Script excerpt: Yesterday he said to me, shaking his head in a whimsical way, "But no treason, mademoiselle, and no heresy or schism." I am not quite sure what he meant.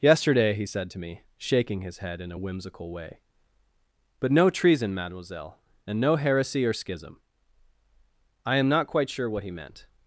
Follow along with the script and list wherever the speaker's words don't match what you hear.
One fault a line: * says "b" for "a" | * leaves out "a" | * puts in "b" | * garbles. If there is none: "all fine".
all fine